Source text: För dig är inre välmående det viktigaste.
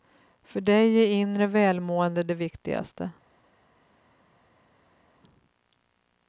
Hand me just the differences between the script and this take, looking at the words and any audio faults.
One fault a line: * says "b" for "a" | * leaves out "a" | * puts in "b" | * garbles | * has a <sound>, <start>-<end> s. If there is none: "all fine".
all fine